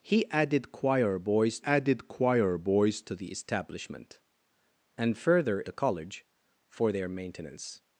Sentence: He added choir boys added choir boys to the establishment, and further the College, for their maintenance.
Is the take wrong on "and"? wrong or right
right